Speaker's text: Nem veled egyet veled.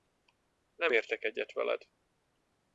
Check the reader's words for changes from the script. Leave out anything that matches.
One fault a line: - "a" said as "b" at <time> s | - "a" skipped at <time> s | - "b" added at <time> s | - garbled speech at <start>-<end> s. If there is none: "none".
- "veled" said as "értek" at 0.9 s